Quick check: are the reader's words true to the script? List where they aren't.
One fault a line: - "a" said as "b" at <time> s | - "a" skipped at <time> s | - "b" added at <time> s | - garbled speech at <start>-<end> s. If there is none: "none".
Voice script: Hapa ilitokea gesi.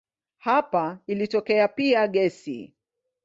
- "pia" added at 1.7 s